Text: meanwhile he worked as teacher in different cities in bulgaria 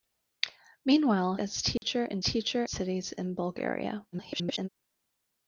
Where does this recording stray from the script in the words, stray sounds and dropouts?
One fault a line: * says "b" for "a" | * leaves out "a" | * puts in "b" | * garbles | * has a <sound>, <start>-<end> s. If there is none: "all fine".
* leaves out "he worked"
* has a dropout, 1.8-1.8 s
* says "teacher" for "different"
* garbles